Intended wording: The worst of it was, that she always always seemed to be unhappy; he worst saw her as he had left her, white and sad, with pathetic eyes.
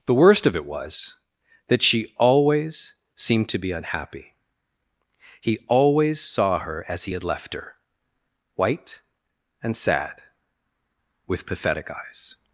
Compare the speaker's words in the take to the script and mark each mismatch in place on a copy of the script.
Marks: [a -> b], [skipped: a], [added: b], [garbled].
The worst of it was, that she always [skipped: always] seemed to be unhappy; he [worst -> always] saw her as he had left her, white and sad, with pathetic eyes.